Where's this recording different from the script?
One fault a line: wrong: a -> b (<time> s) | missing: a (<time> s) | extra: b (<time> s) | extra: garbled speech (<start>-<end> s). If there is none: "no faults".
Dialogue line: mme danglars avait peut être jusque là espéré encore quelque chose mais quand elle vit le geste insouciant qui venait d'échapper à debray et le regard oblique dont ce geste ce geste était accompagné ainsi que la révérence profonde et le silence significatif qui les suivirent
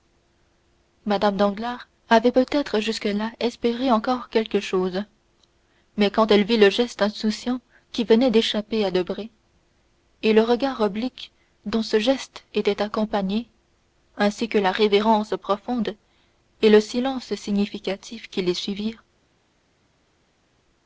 missing: ce geste (12.4 s)